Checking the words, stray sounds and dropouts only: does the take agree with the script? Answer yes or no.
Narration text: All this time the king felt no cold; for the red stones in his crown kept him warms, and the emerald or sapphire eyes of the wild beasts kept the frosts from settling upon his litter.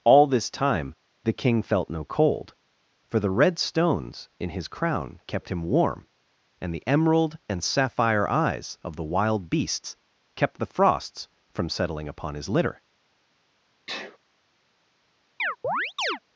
no